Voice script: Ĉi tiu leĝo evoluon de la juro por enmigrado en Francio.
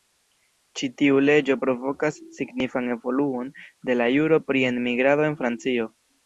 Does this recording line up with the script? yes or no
no